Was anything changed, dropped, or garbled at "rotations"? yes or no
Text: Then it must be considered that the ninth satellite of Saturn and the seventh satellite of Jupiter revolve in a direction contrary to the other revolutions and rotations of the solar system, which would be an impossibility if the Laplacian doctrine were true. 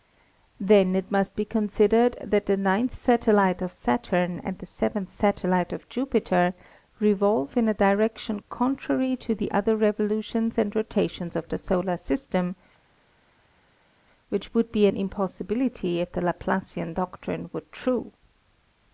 no